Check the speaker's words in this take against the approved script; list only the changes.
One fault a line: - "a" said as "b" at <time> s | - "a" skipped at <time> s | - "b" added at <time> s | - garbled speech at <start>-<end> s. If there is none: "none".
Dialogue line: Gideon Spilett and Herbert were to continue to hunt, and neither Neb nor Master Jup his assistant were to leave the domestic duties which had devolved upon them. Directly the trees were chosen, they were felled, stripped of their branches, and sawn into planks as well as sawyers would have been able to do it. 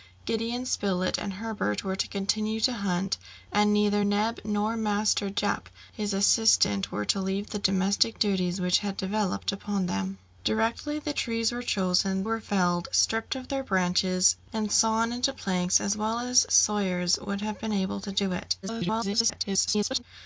- "they" skipped at 12.2 s
- garbled speech at 18.6-20.0 s